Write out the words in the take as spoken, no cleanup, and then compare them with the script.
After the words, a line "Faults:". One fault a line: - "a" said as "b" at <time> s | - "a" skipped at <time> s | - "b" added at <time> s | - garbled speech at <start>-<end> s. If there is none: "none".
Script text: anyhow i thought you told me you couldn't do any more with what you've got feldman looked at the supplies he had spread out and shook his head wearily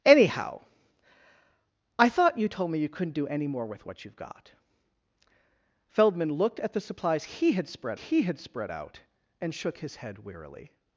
anyhow i thought you told me you couldn't do any more with what you've got feldman looked at the supplies he had spread he had spread out and shook his head wearily
Faults:
- "he had spread" added at 7.9 s